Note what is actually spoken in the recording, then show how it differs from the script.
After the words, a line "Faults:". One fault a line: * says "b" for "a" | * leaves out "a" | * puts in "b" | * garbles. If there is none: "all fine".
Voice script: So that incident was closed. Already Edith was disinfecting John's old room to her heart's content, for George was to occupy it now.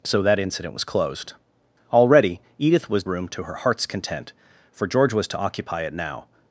So that incident was closed. Already Edith was room to her heart's content, for George was to occupy it now.
Faults:
* leaves out "disinfecting John's old"